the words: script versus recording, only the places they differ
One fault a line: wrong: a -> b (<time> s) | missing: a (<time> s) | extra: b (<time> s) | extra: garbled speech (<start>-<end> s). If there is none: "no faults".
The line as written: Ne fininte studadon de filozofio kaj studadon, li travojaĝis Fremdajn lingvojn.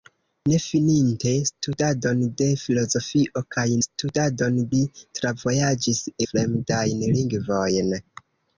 no faults